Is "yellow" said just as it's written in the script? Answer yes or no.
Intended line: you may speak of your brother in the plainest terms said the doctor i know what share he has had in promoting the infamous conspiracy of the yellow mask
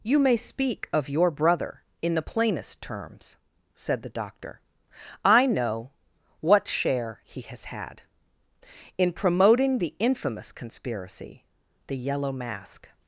yes